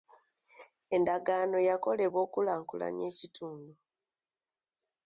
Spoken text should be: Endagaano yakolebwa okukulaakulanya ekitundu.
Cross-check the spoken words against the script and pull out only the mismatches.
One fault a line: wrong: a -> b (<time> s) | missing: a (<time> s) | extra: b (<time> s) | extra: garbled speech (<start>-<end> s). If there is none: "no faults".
no faults